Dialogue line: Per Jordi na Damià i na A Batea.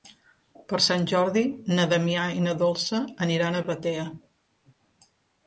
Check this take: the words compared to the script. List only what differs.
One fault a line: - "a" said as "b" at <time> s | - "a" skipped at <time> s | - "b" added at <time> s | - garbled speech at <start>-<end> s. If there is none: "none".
- "Sant" added at 0.8 s
- "Dolça aniran" added at 2.6 s